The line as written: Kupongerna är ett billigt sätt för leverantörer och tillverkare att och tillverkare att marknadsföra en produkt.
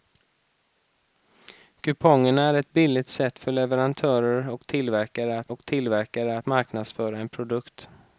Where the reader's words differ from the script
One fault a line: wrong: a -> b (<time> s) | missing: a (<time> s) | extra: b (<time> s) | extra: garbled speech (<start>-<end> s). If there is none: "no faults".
no faults